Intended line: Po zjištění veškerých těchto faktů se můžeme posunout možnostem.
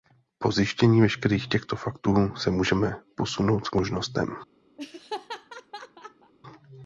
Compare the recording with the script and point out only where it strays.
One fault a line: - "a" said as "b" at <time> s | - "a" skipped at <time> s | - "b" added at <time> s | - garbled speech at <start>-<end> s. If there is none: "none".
none